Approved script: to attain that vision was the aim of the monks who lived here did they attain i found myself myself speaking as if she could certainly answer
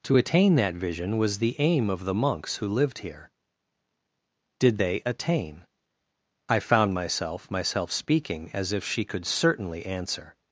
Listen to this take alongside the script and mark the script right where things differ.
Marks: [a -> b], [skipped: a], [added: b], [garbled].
to attain that vision was the aim of the monks who lived here did they attain i found myself myself speaking as if she could certainly answer